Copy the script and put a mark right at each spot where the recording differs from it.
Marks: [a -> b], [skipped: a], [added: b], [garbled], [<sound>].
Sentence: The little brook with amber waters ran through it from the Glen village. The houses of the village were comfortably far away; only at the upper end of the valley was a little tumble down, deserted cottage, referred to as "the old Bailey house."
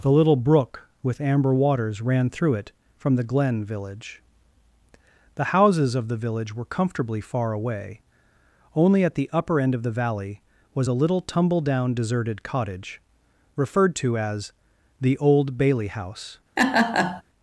The little brook with amber waters ran through it from the Glen village. The houses of the village were comfortably far away; only at the upper end of the valley was a little tumble down, deserted cottage, referred to as "the old Bailey house." [laugh]